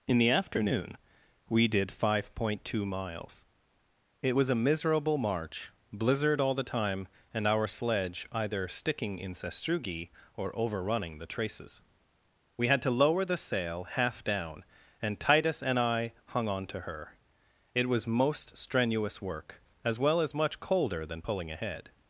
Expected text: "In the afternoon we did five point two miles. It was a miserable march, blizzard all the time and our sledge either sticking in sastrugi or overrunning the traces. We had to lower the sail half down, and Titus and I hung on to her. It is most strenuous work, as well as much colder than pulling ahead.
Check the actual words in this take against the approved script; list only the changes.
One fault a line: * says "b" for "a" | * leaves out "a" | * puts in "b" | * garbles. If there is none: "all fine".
* says "was" for "is"